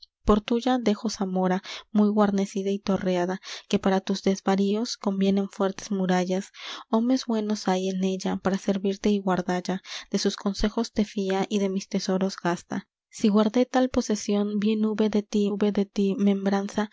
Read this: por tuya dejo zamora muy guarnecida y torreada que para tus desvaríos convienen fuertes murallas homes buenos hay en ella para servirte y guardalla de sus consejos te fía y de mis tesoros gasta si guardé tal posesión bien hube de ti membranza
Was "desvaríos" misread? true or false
false